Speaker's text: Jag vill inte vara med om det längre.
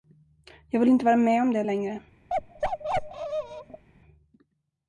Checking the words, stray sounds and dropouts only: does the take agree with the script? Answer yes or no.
no